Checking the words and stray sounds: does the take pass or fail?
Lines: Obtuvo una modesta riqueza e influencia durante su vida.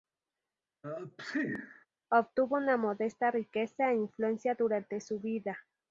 fail